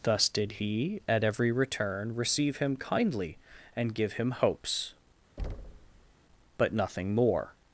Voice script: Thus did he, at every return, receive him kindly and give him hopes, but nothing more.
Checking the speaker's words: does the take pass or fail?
pass